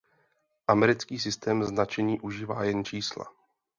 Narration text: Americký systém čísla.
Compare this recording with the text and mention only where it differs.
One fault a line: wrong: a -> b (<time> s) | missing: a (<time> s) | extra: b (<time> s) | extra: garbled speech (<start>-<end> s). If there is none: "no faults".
extra: značení užívá jen (1.6 s)